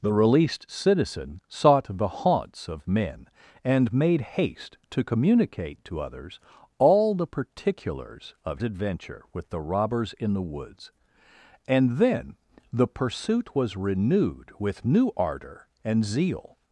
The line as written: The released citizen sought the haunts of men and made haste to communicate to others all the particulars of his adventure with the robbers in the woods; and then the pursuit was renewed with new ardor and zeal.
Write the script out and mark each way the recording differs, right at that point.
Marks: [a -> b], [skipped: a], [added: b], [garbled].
The released citizen sought the haunts of men and made haste to communicate to others all the particulars of [skipped: his] adventure with the robbers in the woods; and then the pursuit was renewed with new ardor and zeal.